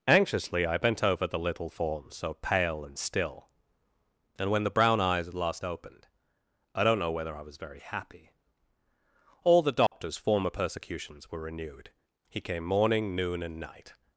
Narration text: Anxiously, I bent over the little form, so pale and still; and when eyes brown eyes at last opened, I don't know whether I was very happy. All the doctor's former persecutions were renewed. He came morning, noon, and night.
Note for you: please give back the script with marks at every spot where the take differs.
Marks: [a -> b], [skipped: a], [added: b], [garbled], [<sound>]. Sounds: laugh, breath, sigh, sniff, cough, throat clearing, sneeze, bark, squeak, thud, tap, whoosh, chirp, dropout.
Anxiously, I bent over the little form, so pale and still; and when [eyes -> the] brown eyes at last opened, I don't know whether I was very happy. All the doctor's [dropout] former persecutions were renewed. He came morning, noon, and night.